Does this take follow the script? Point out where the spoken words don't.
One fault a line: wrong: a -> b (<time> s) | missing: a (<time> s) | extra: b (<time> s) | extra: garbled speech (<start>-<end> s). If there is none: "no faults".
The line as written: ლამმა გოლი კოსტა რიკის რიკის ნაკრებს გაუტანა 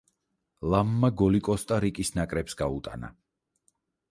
missing: რიკის (2.1 s)